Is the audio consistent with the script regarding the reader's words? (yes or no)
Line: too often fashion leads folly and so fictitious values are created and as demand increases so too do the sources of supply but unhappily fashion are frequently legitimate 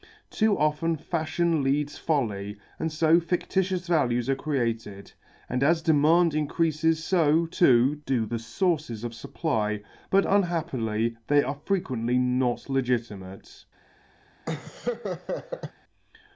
no